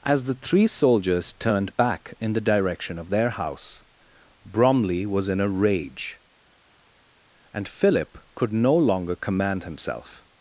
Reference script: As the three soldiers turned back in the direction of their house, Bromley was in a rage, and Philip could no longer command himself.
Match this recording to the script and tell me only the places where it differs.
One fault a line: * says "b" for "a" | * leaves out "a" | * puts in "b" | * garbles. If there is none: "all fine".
all fine